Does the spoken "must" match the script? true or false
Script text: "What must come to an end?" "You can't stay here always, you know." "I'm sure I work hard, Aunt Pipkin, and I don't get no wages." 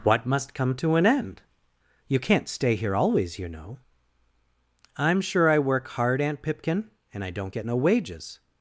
true